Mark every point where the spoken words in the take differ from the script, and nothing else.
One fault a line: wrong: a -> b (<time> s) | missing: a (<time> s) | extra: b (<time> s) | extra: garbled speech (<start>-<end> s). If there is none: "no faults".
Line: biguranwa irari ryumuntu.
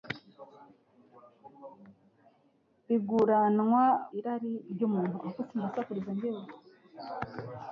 no faults